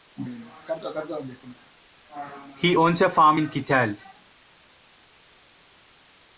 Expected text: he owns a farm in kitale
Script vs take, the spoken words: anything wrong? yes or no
no